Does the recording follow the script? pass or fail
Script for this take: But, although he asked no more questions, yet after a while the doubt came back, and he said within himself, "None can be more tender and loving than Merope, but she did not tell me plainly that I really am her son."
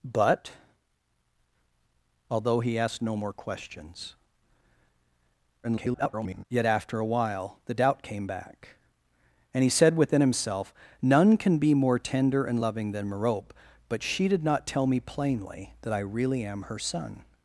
fail